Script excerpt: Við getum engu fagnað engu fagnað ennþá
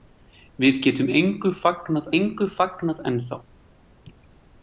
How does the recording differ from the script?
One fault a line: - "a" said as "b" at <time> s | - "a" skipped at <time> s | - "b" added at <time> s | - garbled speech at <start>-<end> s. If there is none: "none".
none